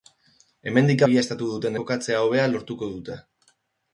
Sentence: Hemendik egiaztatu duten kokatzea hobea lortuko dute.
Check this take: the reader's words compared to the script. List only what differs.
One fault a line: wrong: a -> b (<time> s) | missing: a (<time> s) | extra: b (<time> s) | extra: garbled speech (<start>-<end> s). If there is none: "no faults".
no faults